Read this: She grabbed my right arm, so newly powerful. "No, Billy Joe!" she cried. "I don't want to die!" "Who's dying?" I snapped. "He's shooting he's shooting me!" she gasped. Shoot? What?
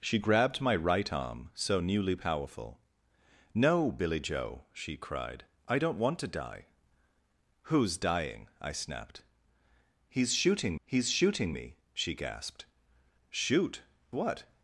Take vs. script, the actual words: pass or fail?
pass